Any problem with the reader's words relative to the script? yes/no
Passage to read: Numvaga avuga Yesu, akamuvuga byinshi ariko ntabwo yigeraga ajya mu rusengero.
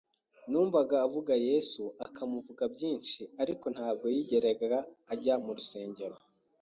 no